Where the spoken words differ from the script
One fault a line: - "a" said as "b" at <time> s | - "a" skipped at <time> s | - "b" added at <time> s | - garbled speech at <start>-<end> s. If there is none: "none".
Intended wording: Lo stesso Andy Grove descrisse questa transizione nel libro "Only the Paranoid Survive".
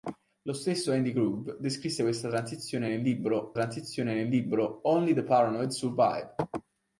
- "transizione nel libro" added at 3.5 s